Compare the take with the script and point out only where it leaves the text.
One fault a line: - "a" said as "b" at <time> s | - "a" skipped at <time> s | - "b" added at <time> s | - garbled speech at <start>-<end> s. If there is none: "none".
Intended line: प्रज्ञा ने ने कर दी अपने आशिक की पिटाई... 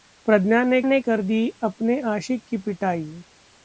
none